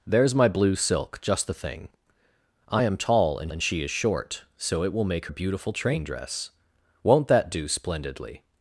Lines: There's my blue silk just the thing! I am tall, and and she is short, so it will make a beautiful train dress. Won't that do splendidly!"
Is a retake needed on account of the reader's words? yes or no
no